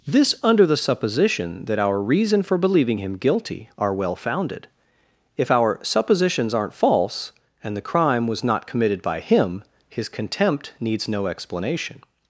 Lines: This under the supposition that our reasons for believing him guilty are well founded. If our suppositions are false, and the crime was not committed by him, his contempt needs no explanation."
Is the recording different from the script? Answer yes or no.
yes